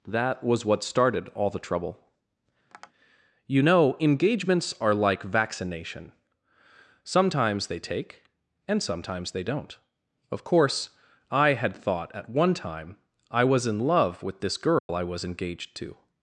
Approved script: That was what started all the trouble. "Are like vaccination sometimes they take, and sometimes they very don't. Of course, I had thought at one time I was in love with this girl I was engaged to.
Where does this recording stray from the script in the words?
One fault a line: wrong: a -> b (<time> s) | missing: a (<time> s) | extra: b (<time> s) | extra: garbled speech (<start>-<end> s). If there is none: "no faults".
extra: You know engagements (3.5 s)
missing: very (9.4 s)